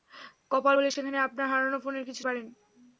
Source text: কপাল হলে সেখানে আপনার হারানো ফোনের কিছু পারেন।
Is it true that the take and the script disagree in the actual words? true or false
false